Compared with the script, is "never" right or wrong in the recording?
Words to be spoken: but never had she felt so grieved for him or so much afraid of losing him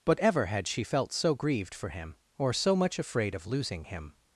wrong